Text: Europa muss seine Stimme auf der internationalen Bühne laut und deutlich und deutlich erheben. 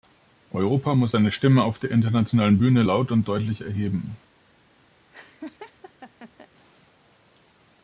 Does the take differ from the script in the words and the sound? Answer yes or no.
yes